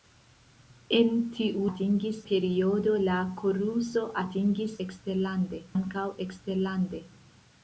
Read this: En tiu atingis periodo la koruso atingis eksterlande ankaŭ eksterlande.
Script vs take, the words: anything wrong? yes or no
no